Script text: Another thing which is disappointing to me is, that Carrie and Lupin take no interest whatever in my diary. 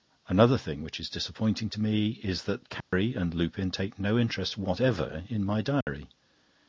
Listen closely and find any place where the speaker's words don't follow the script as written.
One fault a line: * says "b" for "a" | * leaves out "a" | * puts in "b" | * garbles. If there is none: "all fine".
all fine